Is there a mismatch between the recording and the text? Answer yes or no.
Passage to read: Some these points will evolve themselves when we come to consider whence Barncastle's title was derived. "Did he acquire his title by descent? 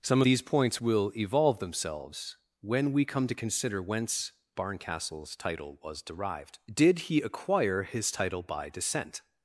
no